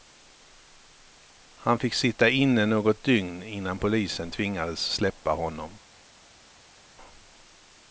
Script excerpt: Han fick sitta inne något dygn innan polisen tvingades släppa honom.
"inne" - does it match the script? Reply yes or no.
yes